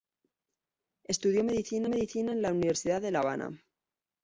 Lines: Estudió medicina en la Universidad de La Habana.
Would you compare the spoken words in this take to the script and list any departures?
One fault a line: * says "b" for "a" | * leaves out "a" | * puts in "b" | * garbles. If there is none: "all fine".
* puts in "medicina"